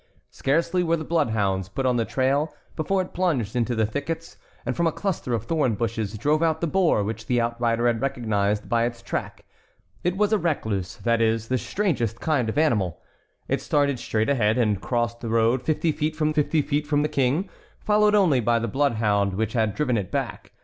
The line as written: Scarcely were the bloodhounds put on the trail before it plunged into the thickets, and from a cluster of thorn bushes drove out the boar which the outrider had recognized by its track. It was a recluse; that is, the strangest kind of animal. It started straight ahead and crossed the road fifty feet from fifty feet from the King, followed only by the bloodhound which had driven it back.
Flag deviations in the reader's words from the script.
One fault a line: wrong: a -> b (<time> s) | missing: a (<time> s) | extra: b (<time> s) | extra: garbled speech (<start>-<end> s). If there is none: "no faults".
no faults